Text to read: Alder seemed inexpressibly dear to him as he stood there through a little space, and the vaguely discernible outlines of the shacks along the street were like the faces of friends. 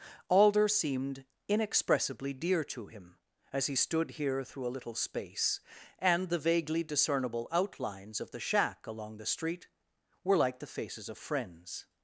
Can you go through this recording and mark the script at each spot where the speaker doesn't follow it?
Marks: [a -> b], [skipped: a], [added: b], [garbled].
Alder seemed inexpressibly dear to him as he stood [there -> here] through a little space, and the vaguely discernible outlines of the [shacks -> shack] along the street were like the faces of friends.